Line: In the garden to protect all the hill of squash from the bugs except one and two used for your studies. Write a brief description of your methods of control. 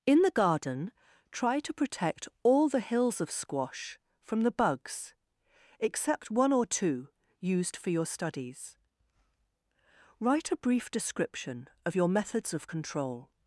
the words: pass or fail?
fail